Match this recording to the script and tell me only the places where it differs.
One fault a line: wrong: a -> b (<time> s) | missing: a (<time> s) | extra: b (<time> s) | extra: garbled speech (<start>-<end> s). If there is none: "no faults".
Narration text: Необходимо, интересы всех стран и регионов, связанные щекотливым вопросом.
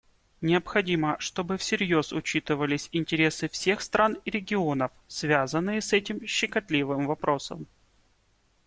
extra: чтобы всерьез учитывались (1.2 s)
extra: с этим (5.8 s)